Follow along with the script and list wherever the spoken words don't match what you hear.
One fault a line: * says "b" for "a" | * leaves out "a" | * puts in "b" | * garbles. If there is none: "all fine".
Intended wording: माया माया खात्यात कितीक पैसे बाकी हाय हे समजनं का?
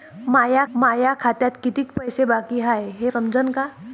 all fine